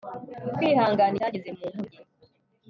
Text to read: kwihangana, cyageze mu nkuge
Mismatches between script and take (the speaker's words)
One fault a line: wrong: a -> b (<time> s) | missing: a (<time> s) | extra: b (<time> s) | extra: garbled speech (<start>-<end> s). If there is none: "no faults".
no faults